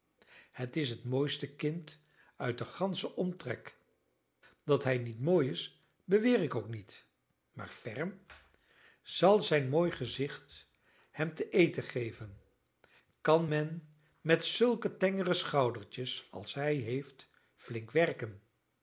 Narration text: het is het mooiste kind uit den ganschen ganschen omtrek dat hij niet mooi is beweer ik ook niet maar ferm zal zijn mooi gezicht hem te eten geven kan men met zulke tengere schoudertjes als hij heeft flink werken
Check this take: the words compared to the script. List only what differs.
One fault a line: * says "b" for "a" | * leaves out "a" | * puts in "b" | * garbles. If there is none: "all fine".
* leaves out "ganschen"